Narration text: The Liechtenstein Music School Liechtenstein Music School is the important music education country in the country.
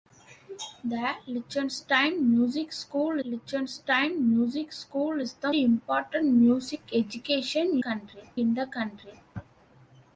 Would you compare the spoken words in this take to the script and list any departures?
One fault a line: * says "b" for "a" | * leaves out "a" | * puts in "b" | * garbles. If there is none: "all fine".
all fine